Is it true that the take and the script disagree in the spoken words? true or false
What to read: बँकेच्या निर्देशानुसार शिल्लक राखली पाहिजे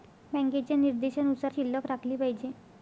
false